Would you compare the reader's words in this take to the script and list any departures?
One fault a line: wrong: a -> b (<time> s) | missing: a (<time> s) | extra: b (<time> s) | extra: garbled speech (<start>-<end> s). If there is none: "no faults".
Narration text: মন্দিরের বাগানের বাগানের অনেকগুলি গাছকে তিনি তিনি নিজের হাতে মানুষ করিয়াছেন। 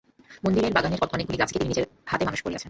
missing: বাগানের (1.0 s)
missing: তিনি (1.7 s)